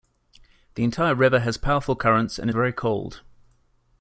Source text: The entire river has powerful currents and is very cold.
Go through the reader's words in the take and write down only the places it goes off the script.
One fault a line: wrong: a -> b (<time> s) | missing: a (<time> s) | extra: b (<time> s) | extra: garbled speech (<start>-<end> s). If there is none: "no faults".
missing: is (2.5 s)